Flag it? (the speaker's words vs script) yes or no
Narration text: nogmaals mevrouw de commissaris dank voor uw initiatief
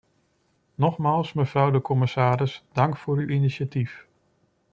no